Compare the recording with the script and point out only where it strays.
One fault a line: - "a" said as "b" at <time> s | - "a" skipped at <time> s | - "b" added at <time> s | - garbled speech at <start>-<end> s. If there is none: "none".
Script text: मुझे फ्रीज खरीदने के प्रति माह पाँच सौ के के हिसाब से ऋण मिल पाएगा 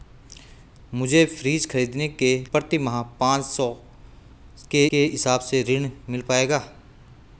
none